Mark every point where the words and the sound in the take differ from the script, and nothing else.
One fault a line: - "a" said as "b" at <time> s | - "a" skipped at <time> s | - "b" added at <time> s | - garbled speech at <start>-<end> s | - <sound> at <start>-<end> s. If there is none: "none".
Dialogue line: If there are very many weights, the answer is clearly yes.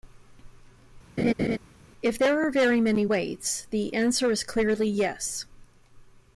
- laugh at 1.2-1.6 s